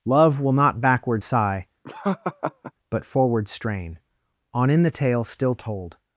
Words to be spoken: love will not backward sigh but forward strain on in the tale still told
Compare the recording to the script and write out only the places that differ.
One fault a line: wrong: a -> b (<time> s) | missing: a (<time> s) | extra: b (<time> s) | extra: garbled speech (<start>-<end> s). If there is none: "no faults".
no faults